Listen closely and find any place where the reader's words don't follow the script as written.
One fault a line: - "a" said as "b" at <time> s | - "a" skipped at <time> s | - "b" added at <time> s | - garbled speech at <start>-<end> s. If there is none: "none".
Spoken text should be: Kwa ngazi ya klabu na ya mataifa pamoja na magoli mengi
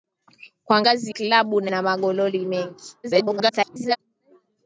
- "ya" skipped at 1.1 s
- "ya mataifa pamoja" skipped at 1.7 s
- garbled speech at 3.0-4.0 s